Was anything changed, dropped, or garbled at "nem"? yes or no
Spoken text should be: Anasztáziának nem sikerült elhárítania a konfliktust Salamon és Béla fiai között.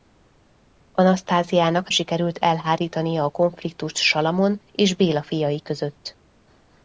yes